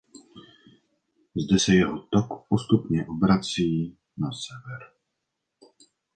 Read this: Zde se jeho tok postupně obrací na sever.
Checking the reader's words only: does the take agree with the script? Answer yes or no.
yes